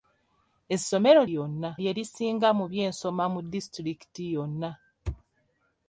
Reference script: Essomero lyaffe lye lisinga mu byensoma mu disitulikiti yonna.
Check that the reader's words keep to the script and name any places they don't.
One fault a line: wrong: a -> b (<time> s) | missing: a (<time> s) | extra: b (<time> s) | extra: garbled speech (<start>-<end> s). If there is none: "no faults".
wrong: lyaffe -> yonna (1.3 s)